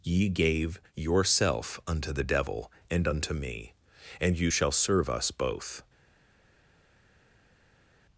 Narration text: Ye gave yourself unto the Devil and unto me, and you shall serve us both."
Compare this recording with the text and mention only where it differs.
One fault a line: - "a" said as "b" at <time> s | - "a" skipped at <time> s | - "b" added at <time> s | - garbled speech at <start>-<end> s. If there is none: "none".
none